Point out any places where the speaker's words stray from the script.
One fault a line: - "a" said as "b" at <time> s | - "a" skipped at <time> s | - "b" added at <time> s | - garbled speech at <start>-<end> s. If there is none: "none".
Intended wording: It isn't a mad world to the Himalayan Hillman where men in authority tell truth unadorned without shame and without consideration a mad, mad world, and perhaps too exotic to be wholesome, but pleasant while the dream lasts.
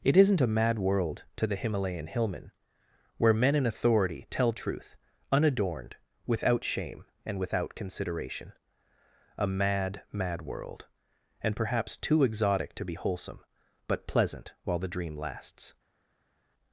none